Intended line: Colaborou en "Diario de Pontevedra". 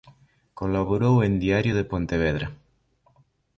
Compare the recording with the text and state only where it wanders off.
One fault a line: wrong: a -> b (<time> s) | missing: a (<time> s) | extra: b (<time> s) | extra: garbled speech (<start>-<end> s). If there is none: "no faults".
no faults